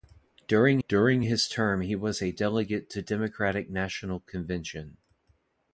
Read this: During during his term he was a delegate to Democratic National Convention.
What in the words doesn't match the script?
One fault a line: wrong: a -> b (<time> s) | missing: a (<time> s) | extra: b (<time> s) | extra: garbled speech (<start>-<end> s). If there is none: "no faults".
no faults